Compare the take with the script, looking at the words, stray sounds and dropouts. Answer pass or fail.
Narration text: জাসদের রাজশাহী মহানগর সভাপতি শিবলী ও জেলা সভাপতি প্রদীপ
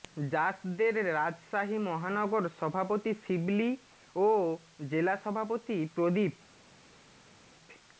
pass